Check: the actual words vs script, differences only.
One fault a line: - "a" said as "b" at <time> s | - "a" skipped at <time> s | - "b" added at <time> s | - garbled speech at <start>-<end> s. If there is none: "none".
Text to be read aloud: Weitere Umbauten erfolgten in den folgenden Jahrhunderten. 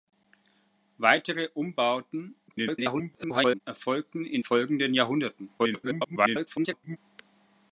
- garbled speech at 2.5-3.6 s
- "den" skipped at 4.4 s
- garbled speech at 5.6-7.0 s